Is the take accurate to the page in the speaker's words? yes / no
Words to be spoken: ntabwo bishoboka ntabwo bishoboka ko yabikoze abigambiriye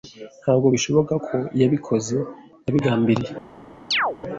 no